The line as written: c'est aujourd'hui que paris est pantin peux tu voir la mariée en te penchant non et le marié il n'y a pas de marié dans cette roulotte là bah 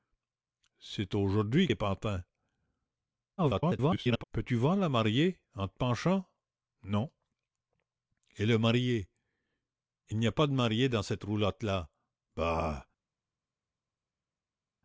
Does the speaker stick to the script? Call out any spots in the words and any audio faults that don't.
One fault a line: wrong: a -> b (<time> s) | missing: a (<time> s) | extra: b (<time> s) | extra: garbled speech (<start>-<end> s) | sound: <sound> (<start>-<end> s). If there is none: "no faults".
missing: que paris (1.7 s)
extra: garbled speech (3.4-4.2 s)